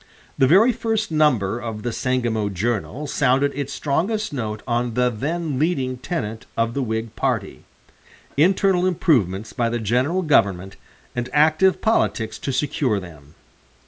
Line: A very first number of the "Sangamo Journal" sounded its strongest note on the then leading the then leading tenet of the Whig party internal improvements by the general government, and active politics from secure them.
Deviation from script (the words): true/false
true